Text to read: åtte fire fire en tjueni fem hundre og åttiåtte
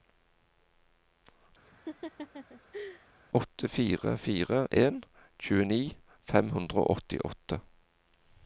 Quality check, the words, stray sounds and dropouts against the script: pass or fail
fail